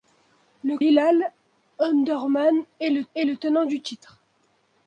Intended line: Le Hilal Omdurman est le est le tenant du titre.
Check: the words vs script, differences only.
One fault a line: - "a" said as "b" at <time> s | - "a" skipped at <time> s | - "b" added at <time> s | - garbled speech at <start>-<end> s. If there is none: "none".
none